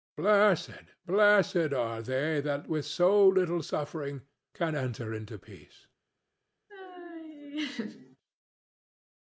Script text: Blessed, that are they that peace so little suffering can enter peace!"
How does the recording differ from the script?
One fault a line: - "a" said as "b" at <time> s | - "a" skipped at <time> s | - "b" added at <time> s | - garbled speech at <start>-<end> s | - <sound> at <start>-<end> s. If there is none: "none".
- "that" said as "blessed" at 1.1 s
- "peace" said as "with" at 2.7 s
- "into" added at 5.1 s
- laugh at 6.7-8.2 s